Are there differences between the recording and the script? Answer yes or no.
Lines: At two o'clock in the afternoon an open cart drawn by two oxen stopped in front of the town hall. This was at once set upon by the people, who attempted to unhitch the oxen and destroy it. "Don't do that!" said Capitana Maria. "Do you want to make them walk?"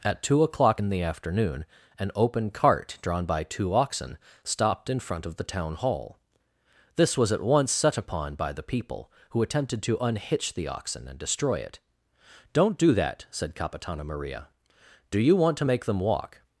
no